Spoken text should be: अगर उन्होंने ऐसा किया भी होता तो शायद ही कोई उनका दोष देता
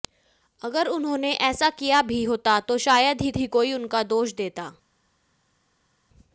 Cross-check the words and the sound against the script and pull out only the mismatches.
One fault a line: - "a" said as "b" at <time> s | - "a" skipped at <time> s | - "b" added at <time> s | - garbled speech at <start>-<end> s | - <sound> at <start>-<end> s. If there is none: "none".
- "ही" added at 3.4 s